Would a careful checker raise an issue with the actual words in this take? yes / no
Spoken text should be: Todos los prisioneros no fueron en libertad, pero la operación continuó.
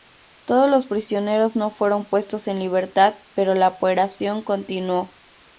yes